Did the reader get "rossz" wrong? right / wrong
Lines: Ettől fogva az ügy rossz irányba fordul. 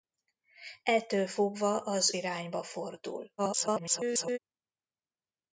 wrong